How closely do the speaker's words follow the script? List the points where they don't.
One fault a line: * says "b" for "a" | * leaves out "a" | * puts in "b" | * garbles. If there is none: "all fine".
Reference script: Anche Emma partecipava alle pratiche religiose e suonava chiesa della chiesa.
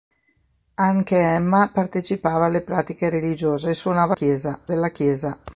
all fine